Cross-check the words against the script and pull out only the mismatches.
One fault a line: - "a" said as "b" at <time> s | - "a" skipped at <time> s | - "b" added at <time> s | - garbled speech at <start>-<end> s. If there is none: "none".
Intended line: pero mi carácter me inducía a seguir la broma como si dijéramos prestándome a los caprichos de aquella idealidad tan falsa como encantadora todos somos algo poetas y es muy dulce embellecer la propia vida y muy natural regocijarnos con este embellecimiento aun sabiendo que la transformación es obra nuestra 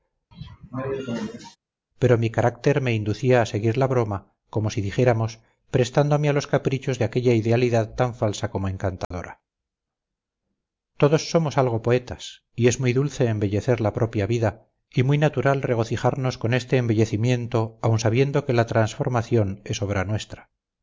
none